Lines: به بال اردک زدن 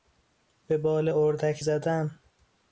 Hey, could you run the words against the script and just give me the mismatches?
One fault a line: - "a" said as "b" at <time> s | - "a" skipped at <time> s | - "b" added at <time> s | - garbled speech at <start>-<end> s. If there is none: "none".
none